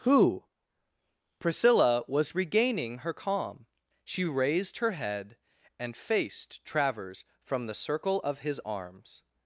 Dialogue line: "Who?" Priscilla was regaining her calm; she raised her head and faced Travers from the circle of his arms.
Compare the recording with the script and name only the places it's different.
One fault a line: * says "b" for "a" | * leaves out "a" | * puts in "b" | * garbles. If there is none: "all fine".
all fine